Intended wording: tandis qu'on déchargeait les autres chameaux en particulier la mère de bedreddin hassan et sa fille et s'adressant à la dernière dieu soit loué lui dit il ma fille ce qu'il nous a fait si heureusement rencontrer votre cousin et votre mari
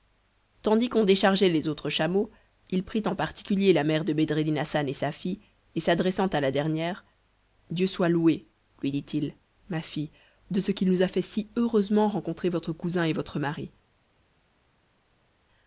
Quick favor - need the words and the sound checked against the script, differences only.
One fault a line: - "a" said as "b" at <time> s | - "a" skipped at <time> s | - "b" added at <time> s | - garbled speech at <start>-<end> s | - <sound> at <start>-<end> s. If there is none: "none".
- "il prit" added at 2.7 s
- "de" added at 10.5 s